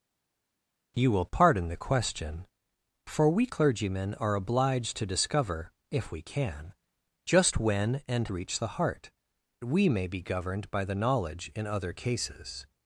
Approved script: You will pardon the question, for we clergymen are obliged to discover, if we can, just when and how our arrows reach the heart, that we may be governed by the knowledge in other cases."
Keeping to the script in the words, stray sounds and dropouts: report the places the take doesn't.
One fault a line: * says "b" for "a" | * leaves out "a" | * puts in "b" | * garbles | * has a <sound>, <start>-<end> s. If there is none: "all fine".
* leaves out "how our arrows"
* leaves out "that"